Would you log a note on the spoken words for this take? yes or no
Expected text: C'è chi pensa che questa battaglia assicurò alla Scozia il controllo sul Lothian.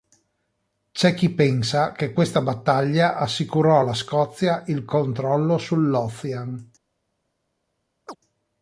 no